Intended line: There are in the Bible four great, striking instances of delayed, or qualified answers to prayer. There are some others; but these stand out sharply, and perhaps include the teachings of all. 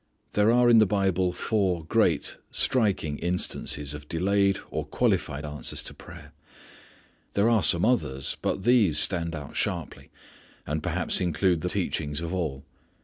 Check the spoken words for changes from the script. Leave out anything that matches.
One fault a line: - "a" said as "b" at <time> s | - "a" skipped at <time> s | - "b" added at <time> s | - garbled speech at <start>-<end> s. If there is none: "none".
none